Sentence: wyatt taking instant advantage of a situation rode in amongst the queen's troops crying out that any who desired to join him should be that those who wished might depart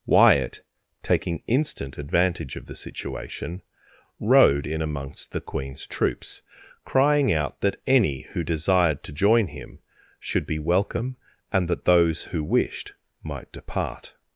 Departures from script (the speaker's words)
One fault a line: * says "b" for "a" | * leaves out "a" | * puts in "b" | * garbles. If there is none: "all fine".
* says "the" for "a"
* puts in "welcome and"